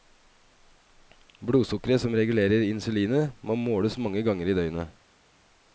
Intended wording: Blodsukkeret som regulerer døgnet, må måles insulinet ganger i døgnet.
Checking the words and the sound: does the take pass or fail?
fail